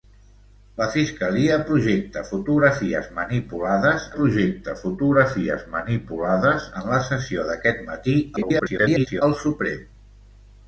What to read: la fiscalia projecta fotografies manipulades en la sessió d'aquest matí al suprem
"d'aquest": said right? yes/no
yes